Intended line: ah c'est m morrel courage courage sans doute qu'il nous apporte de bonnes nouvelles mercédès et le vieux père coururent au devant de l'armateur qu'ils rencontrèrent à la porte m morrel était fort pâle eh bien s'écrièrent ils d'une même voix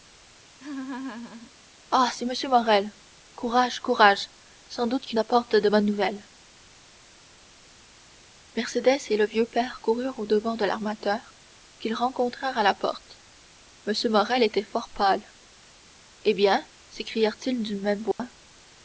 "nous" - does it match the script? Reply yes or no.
no